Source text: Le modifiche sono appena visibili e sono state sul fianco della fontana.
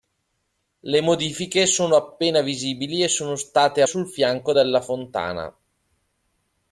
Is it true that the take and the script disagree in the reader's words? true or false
false